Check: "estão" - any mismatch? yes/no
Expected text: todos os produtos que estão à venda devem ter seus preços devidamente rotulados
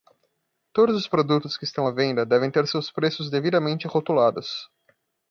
no